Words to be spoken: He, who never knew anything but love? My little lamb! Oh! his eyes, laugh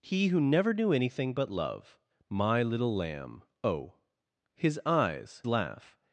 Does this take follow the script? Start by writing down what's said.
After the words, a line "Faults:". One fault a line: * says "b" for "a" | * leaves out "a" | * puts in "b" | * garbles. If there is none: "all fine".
He, who never knew anything but love? My little lamb! Oh! his eyes, laugh
Faults:
all fine